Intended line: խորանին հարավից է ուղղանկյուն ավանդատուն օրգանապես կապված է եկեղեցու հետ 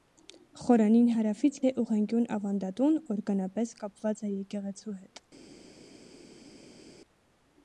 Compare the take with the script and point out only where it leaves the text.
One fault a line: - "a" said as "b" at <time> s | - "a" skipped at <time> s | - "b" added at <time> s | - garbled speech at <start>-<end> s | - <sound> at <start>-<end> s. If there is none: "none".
none